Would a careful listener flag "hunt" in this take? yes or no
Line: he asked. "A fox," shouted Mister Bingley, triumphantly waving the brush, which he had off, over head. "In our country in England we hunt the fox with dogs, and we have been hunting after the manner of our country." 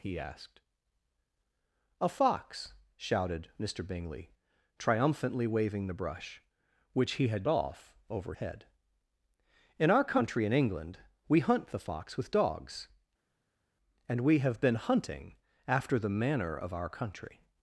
no